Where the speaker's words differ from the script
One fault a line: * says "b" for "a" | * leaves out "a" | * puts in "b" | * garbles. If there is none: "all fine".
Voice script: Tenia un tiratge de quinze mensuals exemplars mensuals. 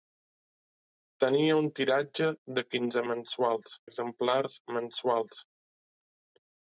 all fine